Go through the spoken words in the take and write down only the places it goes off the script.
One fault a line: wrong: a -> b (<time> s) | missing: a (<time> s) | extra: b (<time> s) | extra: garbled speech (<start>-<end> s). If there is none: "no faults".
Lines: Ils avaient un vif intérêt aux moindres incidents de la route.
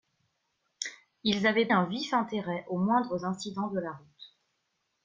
no faults